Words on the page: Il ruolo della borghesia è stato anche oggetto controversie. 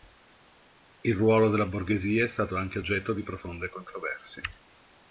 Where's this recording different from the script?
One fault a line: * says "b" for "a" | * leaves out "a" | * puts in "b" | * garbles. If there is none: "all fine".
* puts in "di profonde"